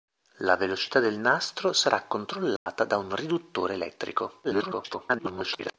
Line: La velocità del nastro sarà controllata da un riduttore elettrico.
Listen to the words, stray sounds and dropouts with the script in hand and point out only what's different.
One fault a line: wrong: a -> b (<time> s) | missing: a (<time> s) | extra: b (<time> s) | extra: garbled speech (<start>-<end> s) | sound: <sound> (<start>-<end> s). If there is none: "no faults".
sound: dropout (2.6-2.7 s)
extra: garbled speech (4.4-5.7 s)